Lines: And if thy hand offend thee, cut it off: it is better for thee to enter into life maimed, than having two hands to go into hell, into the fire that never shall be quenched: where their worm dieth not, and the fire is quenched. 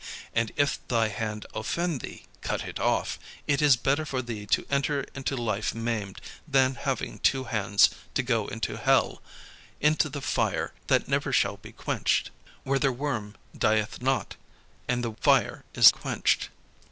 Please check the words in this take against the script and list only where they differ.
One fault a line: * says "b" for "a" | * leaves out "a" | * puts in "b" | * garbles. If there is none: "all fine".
all fine